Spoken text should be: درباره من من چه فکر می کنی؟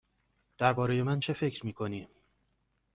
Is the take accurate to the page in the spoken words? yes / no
no